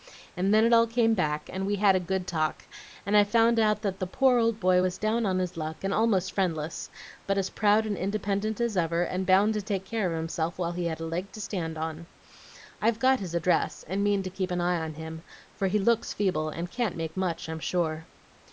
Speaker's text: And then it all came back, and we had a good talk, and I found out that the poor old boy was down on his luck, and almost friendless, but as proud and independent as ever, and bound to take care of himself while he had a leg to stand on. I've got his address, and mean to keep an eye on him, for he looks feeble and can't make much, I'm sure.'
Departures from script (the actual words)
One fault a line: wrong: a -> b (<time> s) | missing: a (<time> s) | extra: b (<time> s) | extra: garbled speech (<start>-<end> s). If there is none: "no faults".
no faults